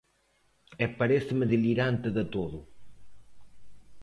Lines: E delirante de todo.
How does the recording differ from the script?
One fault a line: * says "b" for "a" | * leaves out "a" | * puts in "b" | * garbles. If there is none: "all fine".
* puts in "paréceme"